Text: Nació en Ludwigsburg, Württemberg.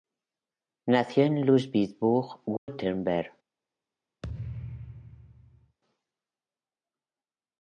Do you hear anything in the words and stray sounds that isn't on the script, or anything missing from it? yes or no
yes